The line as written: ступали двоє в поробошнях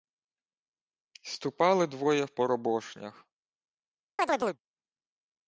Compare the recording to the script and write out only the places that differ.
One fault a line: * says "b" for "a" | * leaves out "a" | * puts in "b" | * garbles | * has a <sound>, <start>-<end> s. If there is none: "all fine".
* has a chirp, 4.2-4.6 s